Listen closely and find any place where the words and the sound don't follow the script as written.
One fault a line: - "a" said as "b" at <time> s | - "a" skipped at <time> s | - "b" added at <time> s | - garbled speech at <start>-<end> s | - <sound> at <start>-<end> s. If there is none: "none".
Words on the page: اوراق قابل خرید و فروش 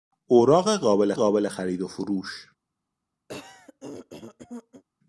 - "قابل" added at 1.1 s
- throat clearing at 3.3-4.8 s